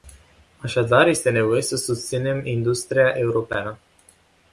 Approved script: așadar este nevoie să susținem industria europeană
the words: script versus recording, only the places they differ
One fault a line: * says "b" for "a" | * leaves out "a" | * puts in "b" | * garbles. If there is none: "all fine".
all fine